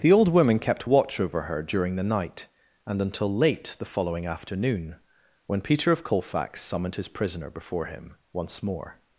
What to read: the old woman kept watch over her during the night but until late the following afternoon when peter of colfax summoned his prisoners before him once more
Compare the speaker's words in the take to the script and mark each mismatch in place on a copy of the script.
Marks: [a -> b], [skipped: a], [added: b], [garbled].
the old woman kept watch over her during the night [but -> and] until late the following afternoon when peter of colfax summoned his [prisoners -> prisoner] before him once more